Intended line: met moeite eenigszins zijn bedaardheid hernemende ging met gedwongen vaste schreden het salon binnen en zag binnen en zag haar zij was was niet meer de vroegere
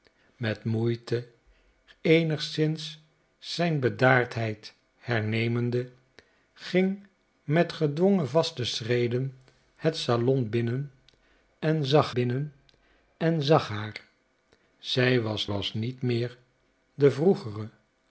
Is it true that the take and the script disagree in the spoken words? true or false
false